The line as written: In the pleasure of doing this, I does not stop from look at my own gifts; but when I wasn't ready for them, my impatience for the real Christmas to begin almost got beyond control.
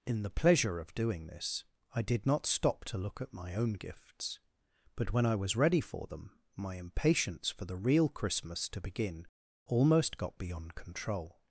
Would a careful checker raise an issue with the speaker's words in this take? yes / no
yes